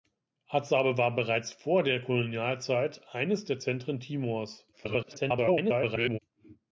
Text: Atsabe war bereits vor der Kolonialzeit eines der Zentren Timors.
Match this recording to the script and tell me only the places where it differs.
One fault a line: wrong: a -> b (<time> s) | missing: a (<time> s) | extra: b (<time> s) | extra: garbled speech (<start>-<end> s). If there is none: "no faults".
extra: garbled speech (4.7-6.2 s)